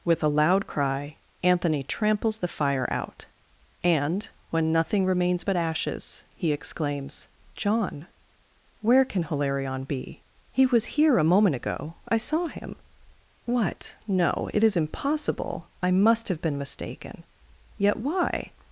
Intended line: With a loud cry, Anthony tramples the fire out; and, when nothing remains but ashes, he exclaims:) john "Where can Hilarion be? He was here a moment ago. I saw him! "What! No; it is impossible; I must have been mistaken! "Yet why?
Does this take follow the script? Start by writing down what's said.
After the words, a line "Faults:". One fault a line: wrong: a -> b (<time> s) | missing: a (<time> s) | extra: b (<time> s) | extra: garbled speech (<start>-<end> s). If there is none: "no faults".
With a loud cry, Anthony tramples the fire out; and, when nothing remains but ashes, he exclaims:) john "Where can Hilarion be? He was here a moment ago. I saw him! "What! No; it is impossible; I must have been mistaken! "Yet why?
Faults:
no faults